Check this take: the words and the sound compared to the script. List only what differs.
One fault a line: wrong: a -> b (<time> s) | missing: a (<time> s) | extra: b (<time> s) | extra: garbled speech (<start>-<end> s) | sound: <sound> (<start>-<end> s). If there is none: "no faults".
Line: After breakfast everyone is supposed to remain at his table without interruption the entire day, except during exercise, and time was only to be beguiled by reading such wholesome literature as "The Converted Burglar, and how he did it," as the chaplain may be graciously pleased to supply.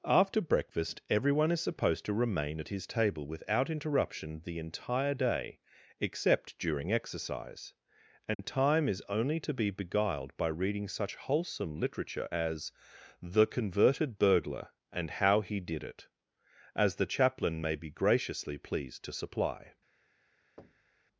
sound: dropout (8.3-8.4 s)
wrong: was -> is (8.9 s)
sound: thud (20.6-21.1 s)